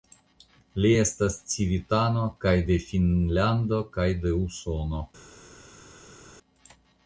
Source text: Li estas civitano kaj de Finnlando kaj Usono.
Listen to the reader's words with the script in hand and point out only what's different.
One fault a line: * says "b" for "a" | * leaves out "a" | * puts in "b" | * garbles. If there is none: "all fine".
* puts in "de"